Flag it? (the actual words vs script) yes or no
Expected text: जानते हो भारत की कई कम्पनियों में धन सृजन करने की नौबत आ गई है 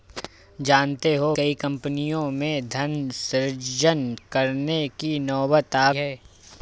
yes